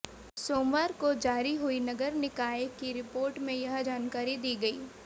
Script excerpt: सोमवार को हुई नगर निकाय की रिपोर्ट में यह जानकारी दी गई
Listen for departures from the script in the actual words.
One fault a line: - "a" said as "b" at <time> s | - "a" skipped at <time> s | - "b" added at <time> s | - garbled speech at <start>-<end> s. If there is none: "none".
- "जारी" added at 1.1 s